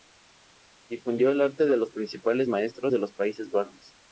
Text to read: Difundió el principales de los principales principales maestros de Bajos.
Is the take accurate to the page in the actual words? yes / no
no